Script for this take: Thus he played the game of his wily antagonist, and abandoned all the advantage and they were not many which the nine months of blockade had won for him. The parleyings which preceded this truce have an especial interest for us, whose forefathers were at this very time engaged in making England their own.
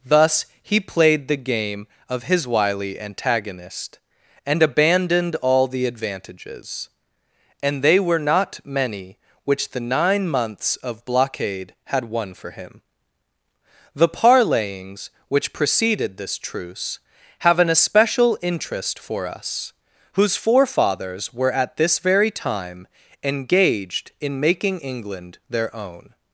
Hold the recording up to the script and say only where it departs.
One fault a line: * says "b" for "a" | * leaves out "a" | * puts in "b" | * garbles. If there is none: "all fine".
* says "advantages" for "advantage"